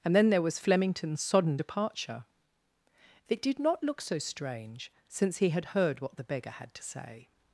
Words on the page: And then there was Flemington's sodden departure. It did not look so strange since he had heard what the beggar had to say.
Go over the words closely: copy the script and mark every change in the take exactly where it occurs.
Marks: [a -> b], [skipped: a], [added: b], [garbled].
And then there was Flemington's sodden departure. It did not look so strange since he had heard what the beggar had to say.